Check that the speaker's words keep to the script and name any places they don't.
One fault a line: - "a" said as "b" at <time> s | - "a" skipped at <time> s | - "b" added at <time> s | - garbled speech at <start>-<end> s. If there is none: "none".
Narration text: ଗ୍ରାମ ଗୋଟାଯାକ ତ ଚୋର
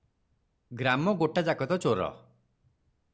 none